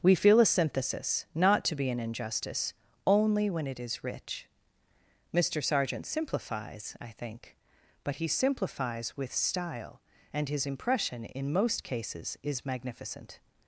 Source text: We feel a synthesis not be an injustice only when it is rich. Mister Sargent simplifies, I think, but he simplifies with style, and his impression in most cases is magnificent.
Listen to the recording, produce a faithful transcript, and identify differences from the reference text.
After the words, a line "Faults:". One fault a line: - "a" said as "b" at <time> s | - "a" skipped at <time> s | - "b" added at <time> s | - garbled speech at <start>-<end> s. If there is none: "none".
We feel a synthesis not to be an injustice only when it is rich. Mister Sargent simplifies, I think, but he simplifies with style, and his impression in most cases is magnificent.
Faults:
- "to" added at 1.6 s